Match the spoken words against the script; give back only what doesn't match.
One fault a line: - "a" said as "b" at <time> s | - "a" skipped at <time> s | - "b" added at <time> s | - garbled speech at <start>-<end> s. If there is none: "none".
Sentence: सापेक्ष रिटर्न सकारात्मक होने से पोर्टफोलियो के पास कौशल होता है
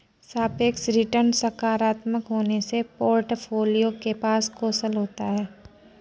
none